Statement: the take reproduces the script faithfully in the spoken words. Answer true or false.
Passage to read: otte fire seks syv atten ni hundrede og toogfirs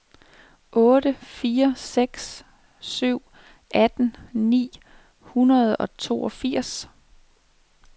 true